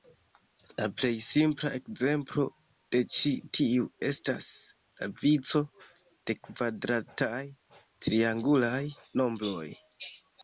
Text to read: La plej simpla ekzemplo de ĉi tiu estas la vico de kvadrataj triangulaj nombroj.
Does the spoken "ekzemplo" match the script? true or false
true